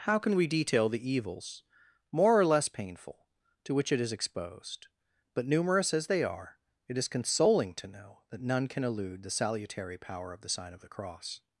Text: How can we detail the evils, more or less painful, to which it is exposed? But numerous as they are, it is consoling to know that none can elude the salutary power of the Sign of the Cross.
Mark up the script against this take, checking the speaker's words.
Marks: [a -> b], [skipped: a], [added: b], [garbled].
How can we detail the evils, more or less painful, to which it is exposed? But numerous as they are, it is consoling to know that none can elude the salutary power of the Sign of the Cross.